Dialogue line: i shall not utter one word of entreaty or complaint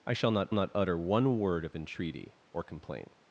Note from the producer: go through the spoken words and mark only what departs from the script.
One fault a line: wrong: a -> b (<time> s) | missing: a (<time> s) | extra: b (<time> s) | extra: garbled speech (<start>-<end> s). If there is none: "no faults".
extra: not (0.5 s)